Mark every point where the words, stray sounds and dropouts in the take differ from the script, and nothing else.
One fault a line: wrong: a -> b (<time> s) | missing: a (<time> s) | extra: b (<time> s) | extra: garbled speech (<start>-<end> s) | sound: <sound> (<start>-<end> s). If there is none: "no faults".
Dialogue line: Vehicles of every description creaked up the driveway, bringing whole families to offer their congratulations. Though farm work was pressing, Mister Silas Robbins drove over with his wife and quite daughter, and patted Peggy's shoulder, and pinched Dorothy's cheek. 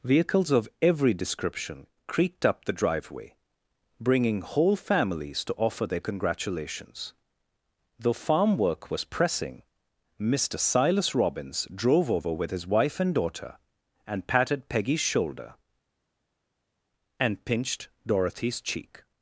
missing: quite (13.1 s)